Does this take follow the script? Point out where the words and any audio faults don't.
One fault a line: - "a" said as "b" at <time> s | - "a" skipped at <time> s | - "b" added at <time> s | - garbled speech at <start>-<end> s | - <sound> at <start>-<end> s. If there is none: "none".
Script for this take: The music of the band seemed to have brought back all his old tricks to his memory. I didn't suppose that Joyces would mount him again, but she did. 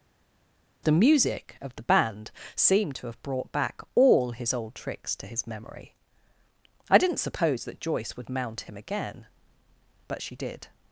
- "Joyces" said as "Joyce" at 7.8 s